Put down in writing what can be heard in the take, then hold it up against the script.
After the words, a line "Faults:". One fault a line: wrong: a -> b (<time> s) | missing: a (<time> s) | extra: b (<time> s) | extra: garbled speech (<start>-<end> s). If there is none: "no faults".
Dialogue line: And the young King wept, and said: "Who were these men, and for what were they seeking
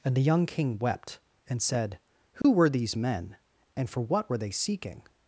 And the young King wept, and said: "Who were these men, and for what were they seeking
Faults:
no faults